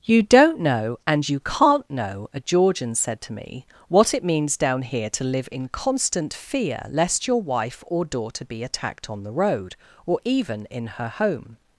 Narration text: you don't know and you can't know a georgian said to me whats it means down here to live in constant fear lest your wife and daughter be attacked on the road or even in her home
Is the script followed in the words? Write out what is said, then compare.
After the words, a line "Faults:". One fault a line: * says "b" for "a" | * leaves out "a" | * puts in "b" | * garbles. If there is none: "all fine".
you don't know and you can't know a georgian said to me what it means down here to live in constant fear lest your wife or daughter be attacked on the road or even in her home
Faults:
* says "what" for "whats"
* says "or" for "and"